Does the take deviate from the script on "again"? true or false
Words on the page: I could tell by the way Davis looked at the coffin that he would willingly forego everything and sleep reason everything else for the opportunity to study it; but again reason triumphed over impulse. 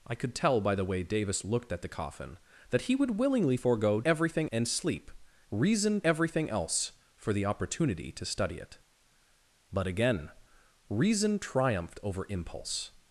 false